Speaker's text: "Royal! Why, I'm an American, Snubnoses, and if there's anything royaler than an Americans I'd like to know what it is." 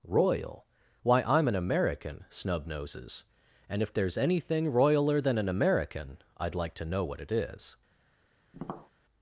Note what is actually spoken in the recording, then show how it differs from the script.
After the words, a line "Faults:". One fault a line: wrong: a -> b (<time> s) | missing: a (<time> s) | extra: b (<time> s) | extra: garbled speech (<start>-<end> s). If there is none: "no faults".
"Royal! Why, I'm an American, Snubnoses, and if there's anything royaler than an American I'd like to know what it is."
Faults:
wrong: Americans -> American (5.5 s)